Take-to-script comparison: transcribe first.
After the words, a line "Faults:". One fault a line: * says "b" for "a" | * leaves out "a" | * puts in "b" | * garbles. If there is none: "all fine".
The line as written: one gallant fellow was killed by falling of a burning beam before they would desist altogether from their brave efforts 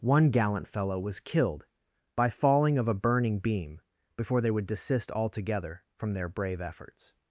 one gallant fellow was killed by falling of a burning beam before they would desist altogether from their brave efforts
Faults:
all fine